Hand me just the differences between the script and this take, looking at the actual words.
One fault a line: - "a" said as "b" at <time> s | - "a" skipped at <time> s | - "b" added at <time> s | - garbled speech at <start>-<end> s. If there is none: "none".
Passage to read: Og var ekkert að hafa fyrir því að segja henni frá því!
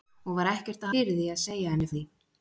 - "hafa" skipped at 0.9 s
- "frá" skipped at 1.9 s